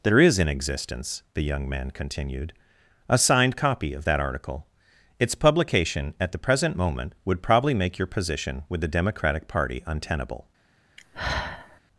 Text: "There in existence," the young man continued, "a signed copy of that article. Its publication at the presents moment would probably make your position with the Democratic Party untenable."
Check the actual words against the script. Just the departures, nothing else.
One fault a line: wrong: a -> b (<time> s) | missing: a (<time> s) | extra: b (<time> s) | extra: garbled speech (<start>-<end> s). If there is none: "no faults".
extra: is (0.2 s)
wrong: presents -> present (6.4 s)